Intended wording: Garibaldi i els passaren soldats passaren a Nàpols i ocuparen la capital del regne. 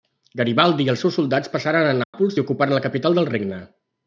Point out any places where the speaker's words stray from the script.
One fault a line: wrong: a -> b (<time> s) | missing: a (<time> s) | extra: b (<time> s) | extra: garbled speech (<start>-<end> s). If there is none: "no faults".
wrong: passaren -> seus (1.1 s)